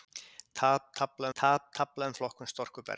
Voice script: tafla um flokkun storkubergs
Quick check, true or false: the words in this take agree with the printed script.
false